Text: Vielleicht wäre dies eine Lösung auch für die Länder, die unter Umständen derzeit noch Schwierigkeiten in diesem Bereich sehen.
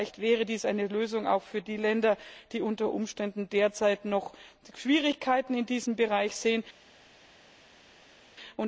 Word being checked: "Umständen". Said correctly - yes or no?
yes